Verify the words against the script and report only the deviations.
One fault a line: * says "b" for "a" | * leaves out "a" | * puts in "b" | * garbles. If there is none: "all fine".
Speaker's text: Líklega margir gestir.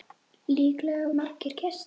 all fine